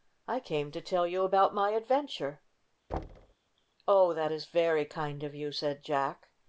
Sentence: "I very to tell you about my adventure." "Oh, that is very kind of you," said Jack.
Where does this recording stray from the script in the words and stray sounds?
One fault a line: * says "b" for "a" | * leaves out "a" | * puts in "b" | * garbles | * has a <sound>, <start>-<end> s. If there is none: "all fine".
* says "came" for "very"
* has a thud, 2.9-3.3 s